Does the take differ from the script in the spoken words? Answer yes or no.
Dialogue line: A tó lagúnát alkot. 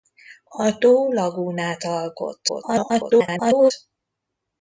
yes